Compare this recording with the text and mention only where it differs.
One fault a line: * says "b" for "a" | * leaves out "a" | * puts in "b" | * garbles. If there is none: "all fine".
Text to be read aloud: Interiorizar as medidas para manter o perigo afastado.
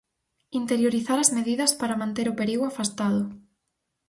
all fine